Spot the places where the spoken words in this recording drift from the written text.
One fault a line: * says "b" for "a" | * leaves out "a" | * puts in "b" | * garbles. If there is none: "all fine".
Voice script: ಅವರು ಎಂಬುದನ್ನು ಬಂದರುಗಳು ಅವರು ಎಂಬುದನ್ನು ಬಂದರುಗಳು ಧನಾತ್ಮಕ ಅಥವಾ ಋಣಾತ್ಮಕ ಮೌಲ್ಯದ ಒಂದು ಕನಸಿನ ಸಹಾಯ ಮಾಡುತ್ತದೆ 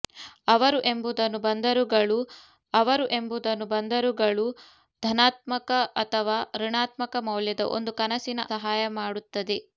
all fine